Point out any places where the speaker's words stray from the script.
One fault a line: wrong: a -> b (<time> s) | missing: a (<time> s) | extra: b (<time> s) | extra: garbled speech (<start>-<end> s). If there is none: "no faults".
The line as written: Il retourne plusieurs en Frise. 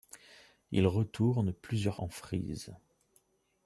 no faults